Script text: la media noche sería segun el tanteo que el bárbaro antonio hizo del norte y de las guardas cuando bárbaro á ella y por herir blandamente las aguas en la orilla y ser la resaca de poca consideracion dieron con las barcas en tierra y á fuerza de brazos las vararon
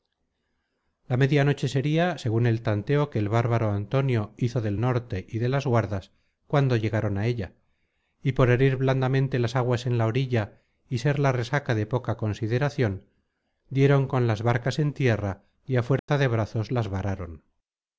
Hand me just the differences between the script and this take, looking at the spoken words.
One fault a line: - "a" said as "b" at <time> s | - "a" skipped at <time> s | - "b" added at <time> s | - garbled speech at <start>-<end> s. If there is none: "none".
- "bárbaro" said as "llegaron" at 6.8 s